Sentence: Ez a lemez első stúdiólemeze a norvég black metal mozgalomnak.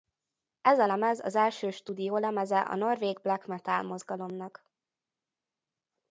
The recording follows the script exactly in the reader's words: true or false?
false